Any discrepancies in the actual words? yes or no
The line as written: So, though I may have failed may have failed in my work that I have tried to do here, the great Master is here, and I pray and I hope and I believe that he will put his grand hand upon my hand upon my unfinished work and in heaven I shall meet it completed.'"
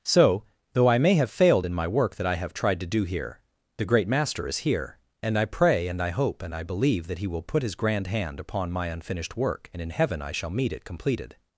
yes